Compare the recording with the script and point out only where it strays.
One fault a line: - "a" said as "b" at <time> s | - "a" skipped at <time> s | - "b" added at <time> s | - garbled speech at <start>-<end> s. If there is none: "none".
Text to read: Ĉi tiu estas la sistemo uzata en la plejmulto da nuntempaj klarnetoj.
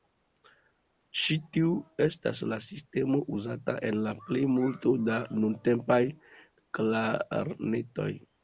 none